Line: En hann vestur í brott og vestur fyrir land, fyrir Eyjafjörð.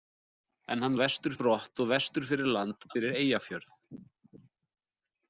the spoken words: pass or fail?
pass